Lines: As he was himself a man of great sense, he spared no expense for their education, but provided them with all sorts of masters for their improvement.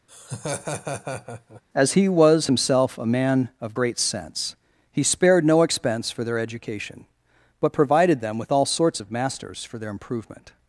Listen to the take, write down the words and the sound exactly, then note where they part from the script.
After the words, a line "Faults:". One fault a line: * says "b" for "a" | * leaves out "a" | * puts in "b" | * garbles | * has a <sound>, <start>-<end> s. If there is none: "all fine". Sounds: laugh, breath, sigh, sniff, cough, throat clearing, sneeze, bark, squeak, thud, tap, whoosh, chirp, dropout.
As he was himself a man of great sense, he spared no expense for their education, but provided them with all sorts of masters for their improvement.
Faults:
* has a laugh, 0.1-1.6 s